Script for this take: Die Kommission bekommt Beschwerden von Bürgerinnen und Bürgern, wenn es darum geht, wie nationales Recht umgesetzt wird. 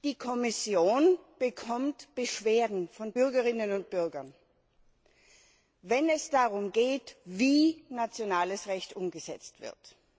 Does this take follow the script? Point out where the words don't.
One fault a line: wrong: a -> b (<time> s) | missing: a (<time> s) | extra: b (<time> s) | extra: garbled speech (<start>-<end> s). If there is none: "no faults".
no faults